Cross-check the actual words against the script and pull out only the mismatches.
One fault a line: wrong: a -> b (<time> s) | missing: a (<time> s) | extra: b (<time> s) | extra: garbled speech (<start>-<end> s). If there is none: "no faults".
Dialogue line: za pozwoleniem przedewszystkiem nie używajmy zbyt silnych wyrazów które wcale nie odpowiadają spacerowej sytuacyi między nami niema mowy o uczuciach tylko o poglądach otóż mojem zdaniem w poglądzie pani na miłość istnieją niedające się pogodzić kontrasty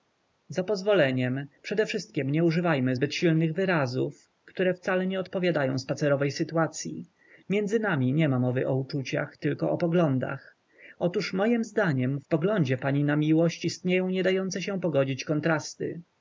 no faults